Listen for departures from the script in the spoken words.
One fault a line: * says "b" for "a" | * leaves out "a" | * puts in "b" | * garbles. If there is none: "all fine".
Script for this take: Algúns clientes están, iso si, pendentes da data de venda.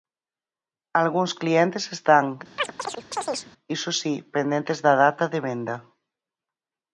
all fine